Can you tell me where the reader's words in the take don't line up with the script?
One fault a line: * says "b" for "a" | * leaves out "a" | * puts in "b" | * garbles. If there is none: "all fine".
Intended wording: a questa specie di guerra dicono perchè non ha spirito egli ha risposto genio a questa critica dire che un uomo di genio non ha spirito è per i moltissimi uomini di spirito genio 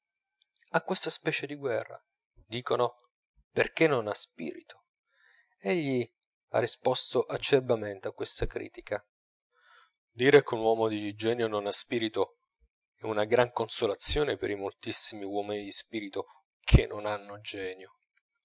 * says "acerbamente" for "genio"
* puts in "una gran consolazione"
* puts in "che non hanno"